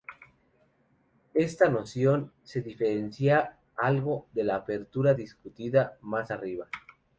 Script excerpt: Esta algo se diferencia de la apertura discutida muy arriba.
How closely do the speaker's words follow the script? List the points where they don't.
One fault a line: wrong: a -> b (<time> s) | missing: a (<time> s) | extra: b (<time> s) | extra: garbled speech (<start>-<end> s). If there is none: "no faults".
wrong: algo -> noción (1.7 s)
extra: algo (3.8 s)
wrong: muy -> más (6.0 s)